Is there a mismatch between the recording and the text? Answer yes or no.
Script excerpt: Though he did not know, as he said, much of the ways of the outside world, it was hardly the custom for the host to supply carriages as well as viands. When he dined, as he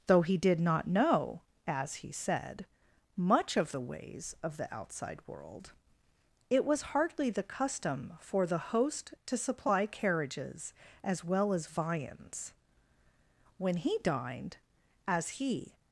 no